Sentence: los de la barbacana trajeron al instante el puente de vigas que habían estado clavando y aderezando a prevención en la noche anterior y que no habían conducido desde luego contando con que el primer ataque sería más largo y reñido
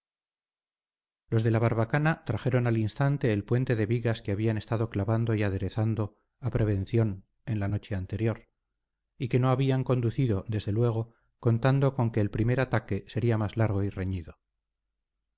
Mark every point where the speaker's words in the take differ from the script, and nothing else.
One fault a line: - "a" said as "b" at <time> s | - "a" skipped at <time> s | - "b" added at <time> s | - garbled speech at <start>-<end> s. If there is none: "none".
none